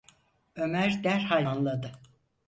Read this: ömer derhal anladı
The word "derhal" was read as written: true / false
true